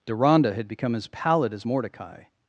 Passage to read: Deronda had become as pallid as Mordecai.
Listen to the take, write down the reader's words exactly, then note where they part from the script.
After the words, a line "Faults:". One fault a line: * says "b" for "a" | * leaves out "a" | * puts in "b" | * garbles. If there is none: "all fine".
Deronda had become as pallid as Mordecai.
Faults:
all fine